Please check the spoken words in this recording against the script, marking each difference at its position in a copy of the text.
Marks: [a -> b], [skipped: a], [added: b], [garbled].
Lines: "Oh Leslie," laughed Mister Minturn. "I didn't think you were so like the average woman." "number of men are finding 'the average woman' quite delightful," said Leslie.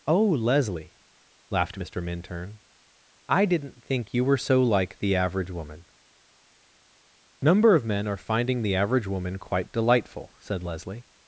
"Oh Leslie," laughed Mister Minturn. "I didn't think you were so like the average woman." "number of men are finding 'the average woman' quite delightful," said Leslie.